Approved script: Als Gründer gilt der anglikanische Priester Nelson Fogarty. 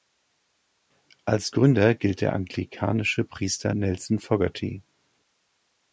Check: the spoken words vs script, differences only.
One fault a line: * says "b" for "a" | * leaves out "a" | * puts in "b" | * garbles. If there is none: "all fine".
all fine